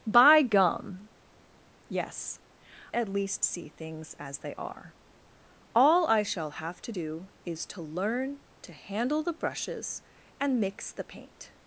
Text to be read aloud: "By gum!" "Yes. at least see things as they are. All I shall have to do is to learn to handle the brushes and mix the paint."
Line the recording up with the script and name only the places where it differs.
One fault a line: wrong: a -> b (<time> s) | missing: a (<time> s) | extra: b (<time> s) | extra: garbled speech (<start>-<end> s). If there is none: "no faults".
no faults